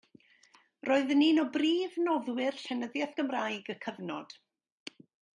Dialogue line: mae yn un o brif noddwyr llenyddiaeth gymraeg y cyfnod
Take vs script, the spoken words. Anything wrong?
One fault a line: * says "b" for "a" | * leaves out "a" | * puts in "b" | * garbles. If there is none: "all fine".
* says "roedd" for "mae"